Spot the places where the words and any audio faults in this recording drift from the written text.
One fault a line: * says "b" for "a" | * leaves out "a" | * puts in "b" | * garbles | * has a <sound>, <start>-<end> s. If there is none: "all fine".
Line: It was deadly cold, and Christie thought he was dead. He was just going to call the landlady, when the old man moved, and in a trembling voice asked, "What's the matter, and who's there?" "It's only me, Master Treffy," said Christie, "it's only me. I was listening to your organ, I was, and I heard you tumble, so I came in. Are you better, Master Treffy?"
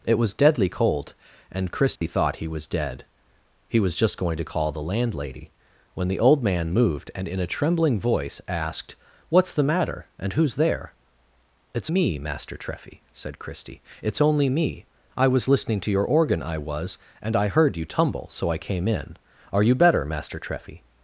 * has a dropout, 2.0-2.0 s
* leaves out "only"